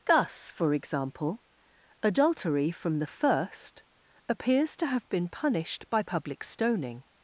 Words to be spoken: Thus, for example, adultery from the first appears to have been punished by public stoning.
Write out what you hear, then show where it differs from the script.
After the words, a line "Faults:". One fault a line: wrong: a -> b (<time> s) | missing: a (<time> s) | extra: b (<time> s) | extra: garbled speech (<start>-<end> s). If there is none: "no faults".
Thus, for example, adultery from the first appears to have been punished by public stoning.
Faults:
no faults